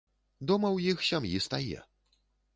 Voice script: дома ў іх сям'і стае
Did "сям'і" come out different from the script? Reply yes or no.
no